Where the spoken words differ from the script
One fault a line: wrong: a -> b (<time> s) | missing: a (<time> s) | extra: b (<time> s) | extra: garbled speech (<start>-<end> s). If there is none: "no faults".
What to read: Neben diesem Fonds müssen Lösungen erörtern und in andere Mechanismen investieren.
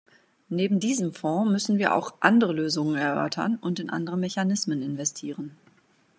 extra: wir auch andere (1.8 s)